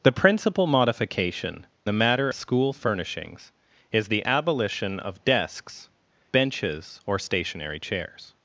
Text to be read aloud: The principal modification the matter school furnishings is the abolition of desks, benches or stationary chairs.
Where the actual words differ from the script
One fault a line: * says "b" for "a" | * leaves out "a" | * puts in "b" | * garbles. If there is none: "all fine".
all fine